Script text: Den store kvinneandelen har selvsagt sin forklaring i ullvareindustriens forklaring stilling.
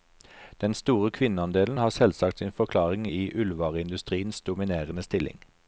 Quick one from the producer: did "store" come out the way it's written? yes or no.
yes